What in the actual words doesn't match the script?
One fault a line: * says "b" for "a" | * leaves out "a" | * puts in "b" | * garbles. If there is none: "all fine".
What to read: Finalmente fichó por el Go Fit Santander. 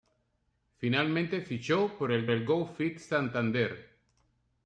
* puts in "el"